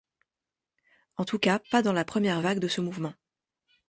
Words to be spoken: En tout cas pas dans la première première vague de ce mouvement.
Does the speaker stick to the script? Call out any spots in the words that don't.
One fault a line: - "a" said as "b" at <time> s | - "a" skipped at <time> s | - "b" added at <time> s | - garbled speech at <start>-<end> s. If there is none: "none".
- "première" skipped at 2.4 s